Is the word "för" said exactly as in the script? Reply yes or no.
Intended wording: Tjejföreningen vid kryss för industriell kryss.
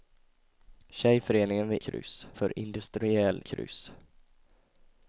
yes